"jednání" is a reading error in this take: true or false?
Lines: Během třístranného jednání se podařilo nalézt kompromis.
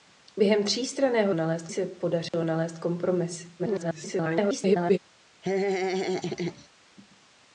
true